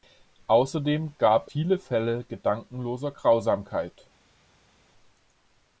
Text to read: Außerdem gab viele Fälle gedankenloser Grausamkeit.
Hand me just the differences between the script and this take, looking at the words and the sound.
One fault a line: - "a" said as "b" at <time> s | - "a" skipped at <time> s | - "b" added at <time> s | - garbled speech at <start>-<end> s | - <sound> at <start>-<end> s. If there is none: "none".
none